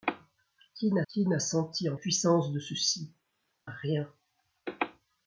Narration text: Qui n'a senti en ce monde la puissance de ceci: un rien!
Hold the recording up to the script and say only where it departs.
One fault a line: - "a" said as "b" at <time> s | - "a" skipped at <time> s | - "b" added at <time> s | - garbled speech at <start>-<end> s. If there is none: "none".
- "qui n'a" added at 1.1 s
- "ce monde la" skipped at 2.0 s
- "un" skipped at 3.1 s